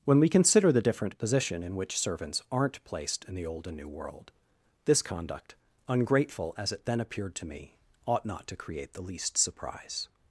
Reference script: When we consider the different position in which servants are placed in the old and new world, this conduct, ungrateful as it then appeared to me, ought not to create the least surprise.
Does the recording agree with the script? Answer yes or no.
no